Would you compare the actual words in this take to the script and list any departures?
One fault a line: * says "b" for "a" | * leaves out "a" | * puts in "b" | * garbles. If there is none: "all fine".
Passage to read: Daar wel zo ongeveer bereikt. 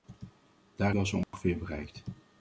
all fine